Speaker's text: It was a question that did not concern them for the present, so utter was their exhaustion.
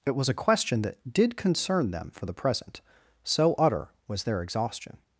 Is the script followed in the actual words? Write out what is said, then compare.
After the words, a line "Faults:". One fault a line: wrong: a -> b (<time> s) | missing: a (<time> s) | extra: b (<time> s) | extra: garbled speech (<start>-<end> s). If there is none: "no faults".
It was a question that did concern them for the present, so utter was their exhaustion.
Faults:
missing: not (1.4 s)